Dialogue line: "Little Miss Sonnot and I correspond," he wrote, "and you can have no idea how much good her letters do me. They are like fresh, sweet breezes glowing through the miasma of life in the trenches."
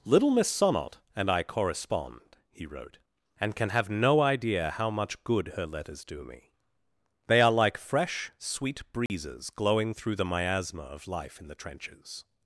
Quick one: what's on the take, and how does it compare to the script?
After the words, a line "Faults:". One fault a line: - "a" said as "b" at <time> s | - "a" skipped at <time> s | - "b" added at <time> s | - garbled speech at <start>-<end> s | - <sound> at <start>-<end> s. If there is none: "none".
"Little Miss Sonnot and I correspond," he wrote, "and can have no idea how much good her letters do me. They are like fresh, sweet breezes glowing through the miasma of life in the trenches."
Faults:
- "you" skipped at 3.5 s
- dropout at 9.1-9.1 s